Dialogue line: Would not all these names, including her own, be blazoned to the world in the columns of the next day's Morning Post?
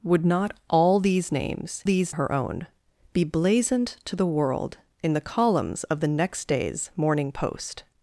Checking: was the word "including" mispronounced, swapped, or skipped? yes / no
yes